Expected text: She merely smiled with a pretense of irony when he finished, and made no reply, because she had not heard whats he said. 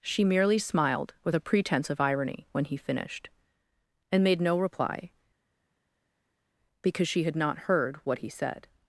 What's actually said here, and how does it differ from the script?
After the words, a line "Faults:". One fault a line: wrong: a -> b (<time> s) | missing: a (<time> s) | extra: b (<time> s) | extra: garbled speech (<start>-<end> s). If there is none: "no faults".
She merely smiled with a pretense of irony when he finished, and made no reply, because she had not heard what he said.
Faults:
wrong: whats -> what (8.0 s)